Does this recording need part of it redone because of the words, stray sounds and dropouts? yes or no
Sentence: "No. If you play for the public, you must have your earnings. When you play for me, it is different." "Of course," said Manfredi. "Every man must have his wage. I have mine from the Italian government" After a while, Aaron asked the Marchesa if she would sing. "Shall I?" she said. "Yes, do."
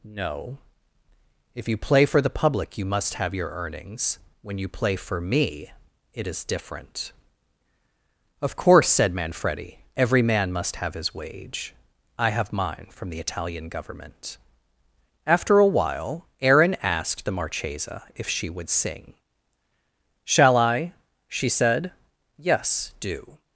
no